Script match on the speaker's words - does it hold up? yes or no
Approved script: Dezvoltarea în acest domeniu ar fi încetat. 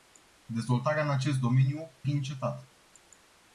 no